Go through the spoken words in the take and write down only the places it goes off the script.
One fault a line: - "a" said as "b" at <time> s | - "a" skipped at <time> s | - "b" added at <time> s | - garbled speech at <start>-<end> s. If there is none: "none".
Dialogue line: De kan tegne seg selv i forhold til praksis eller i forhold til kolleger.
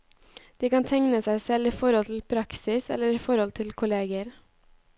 none